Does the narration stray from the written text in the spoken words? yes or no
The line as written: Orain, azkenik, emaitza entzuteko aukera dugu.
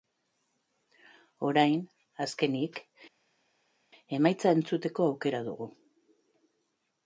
no